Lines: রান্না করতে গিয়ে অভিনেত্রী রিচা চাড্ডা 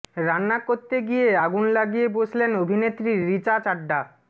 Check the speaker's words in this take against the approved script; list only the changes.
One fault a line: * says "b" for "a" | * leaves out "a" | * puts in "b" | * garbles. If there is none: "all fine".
* puts in "আগুন লাগিয়ে বসলেন"